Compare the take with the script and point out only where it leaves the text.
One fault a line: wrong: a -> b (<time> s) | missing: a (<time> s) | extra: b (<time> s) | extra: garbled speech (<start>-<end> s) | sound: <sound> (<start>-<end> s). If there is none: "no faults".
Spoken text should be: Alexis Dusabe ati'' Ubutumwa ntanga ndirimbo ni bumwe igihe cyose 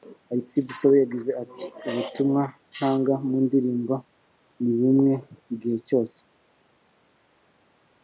extra: yagize (1.0 s)
extra: mu (3.3 s)